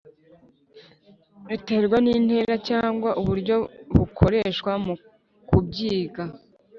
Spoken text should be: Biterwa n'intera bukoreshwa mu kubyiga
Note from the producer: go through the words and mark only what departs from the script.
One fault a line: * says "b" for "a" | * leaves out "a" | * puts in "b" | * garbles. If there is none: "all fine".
* puts in "cyangwa uburyo"